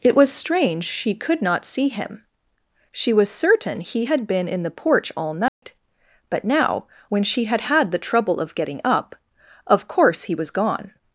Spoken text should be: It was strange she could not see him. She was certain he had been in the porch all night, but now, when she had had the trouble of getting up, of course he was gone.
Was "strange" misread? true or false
false